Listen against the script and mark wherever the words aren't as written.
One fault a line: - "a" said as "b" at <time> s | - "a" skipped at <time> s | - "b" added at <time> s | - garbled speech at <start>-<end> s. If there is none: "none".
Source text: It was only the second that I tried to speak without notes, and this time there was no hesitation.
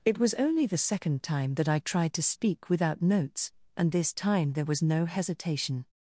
- "time" added at 1.2 s